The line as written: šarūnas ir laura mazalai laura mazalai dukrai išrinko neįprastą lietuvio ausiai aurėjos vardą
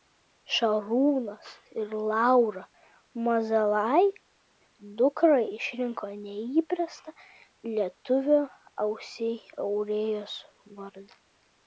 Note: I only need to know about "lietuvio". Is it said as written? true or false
true